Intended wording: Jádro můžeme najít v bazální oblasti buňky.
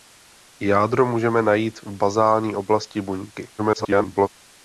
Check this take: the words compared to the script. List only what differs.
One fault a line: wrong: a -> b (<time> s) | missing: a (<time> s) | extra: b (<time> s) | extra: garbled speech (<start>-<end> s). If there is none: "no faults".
extra: garbled speech (3.6-4.3 s)